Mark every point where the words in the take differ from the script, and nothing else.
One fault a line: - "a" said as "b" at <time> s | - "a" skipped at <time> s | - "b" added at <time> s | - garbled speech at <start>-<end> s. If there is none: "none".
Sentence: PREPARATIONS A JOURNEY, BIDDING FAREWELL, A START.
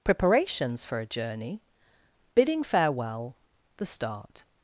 - "FOR" added at 0.8 s
- "A" said as "THE" at 3.8 s